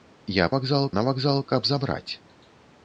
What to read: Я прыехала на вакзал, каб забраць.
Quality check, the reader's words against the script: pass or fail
fail